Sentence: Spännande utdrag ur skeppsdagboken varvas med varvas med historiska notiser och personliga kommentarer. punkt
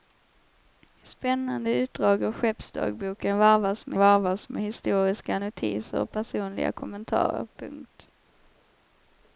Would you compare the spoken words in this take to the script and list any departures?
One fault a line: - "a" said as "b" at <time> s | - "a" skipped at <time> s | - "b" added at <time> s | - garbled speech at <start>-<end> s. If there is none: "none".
none